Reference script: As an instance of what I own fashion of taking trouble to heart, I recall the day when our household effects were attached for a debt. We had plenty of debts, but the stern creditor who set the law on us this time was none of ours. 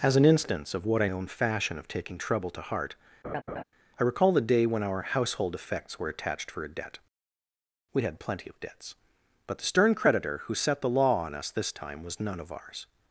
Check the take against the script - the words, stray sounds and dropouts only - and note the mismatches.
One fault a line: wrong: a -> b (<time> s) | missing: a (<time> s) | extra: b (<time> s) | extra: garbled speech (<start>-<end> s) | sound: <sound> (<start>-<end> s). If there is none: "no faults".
sound: laugh (3.2-3.6 s)